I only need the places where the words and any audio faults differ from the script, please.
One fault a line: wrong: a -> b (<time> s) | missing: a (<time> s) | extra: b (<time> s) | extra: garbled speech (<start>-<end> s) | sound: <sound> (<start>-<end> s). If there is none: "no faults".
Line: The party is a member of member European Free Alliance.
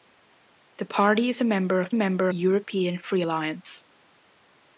no faults